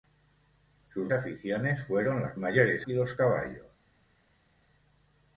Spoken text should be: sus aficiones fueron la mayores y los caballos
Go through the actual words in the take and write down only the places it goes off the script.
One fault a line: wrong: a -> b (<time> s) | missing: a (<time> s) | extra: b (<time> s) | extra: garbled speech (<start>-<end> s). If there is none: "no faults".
no faults